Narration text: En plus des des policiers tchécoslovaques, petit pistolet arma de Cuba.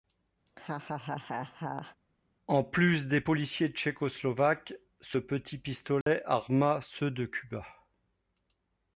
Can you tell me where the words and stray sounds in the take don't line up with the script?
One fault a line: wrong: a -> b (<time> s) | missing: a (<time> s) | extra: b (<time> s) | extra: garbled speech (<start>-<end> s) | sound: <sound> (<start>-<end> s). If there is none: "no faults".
sound: laugh (0.5-2.0 s)
missing: des (3.2 s)
extra: ce (5.0 s)
sound: dropout (6.0-6.1 s)
extra: ceux (6.8 s)